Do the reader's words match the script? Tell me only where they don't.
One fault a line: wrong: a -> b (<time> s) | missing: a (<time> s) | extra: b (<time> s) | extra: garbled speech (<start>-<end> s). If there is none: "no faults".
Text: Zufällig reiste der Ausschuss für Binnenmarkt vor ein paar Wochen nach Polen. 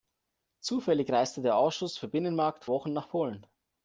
missing: vor ein paar (2.6 s)